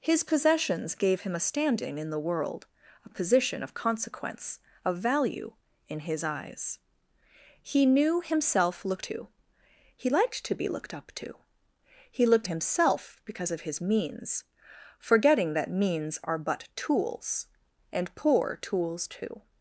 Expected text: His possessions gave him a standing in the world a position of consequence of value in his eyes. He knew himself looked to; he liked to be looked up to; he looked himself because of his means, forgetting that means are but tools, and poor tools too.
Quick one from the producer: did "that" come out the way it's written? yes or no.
yes